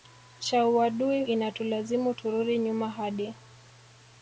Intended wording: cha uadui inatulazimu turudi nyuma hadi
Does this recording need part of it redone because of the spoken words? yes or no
no